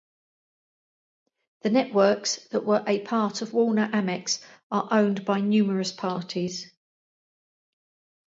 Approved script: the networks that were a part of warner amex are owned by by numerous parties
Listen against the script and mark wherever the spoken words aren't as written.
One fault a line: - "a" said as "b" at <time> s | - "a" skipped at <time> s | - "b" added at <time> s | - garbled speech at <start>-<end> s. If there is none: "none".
- "by" skipped at 5.4 s